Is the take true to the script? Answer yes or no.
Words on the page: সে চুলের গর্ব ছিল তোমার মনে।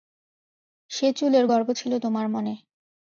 yes